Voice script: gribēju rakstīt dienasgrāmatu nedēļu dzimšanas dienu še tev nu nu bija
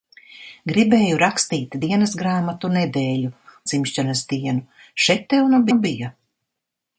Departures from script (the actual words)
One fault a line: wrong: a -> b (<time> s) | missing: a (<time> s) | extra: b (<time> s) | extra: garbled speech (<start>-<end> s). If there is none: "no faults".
no faults